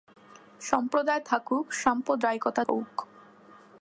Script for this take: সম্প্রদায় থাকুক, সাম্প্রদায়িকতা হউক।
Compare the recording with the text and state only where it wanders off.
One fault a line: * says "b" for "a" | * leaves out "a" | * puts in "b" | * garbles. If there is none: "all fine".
all fine